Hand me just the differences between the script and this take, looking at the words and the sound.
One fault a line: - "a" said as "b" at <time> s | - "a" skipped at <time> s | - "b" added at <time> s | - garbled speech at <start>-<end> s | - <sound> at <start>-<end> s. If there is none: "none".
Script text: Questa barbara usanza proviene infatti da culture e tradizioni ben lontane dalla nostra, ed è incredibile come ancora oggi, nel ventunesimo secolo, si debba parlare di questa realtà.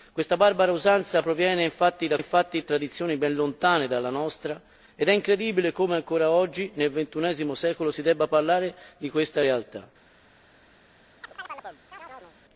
- "culture" said as "infatti" at 2.2 s
- chirp at 11.2-12.4 s